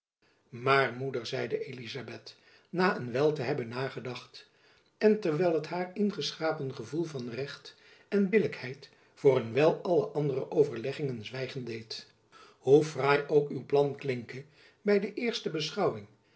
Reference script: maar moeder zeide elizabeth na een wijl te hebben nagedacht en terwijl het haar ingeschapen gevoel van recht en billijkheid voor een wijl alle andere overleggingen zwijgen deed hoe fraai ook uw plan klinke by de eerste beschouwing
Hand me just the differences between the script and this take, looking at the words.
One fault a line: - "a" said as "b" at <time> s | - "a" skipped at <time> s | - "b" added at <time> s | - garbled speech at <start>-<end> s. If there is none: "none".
none